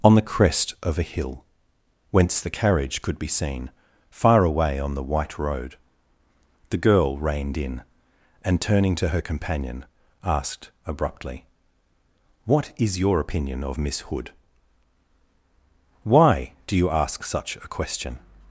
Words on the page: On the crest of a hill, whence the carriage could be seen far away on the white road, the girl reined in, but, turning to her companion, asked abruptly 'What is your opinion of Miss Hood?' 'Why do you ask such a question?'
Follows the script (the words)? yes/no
no